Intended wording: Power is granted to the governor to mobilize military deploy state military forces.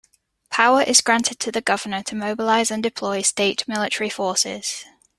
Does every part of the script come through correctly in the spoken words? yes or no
no